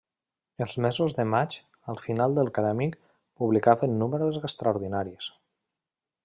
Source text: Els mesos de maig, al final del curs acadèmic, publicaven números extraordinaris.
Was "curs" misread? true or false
true